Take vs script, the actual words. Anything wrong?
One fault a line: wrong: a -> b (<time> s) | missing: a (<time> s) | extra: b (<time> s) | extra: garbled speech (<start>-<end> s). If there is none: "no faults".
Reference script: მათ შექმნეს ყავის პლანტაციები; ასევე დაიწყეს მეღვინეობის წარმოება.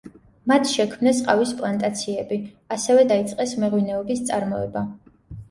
no faults